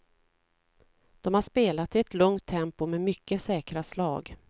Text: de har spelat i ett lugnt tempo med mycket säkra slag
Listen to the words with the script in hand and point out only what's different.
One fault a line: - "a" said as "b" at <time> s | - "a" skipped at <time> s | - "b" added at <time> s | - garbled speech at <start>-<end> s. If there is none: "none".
none